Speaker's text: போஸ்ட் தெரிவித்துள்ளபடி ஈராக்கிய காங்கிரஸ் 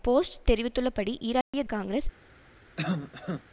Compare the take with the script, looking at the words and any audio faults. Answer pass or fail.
fail